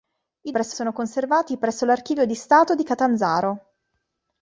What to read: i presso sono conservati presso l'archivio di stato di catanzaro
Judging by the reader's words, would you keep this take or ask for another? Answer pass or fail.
pass